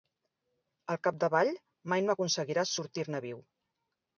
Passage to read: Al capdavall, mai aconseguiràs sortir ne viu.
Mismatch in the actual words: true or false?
true